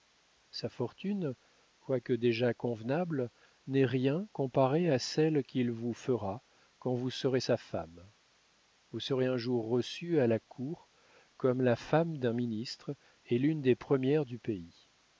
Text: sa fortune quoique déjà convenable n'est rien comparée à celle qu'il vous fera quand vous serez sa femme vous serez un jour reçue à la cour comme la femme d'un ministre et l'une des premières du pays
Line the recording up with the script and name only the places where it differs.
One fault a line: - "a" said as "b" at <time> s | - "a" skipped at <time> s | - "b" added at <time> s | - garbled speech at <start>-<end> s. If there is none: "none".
none